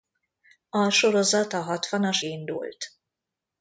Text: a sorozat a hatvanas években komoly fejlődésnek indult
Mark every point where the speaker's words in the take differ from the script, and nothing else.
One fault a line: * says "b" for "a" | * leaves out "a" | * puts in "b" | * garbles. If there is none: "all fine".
* leaves out "években komoly fejlődésnek"